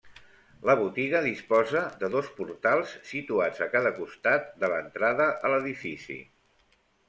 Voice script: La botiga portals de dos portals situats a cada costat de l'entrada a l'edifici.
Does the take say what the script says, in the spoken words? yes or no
no